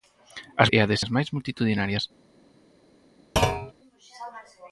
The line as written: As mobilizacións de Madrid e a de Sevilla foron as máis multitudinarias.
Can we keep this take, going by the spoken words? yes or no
no